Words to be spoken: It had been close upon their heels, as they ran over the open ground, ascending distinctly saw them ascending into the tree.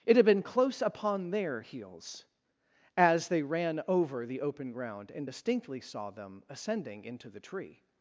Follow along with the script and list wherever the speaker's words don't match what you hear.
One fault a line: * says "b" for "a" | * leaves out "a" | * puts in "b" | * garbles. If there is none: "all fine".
* says "and" for "ascending"